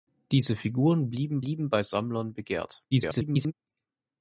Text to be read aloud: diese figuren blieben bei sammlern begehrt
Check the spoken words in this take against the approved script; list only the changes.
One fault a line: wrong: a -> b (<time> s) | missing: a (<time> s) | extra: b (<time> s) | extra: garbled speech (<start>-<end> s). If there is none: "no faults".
extra: blieben (1.4 s)
extra: garbled speech (2.9-3.5 s)